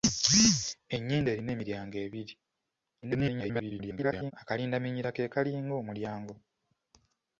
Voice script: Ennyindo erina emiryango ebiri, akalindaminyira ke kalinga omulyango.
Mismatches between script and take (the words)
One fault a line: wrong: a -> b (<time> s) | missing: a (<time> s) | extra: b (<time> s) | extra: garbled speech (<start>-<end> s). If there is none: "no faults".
extra: garbled speech (3.0-4.3 s)